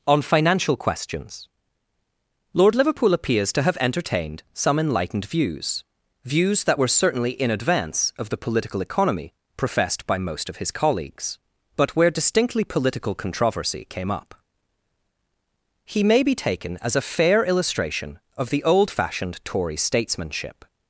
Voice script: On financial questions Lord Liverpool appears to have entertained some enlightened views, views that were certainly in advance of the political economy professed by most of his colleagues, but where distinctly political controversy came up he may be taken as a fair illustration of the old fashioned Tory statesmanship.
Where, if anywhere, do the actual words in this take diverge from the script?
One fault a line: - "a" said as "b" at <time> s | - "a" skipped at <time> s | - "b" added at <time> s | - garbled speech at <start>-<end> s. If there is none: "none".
none